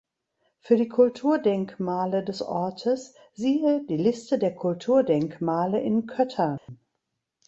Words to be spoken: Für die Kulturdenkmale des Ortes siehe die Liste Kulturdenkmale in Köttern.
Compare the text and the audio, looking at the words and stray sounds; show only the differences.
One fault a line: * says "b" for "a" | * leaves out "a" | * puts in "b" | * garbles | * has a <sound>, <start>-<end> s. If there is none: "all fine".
* puts in "der"
* has a dropout, 6.6-6.7 s